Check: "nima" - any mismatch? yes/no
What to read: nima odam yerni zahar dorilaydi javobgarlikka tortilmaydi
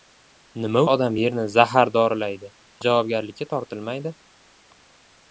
no